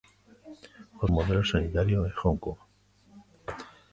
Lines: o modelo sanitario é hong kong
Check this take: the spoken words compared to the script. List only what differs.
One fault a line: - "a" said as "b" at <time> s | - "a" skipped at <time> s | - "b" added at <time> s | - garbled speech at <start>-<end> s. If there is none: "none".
none